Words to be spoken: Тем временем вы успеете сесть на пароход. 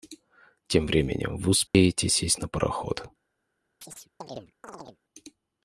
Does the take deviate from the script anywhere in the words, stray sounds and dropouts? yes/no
yes